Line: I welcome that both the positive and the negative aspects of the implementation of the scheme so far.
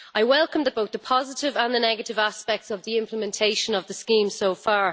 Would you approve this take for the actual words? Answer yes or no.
yes